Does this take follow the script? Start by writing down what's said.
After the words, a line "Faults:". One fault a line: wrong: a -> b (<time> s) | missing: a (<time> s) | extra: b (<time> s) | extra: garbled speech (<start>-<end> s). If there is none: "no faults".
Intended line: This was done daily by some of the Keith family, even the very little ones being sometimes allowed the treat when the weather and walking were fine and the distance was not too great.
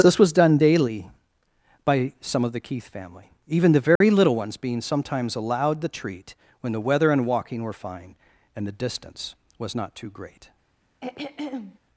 This was done daily by some of the Keith family, even the very little ones being sometimes allowed the treat when the weather and walking were fine and the distance was not too great.
Faults:
no faults